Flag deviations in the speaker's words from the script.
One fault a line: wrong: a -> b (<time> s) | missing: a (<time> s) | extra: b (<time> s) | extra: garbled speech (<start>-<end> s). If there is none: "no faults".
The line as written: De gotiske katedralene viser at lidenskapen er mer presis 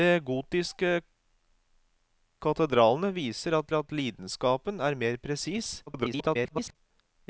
extra: at (3.7 s)
extra: garbled speech (5.9-6.8 s)